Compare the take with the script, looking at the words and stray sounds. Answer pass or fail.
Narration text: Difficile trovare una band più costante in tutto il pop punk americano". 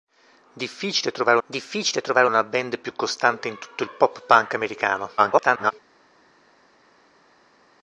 fail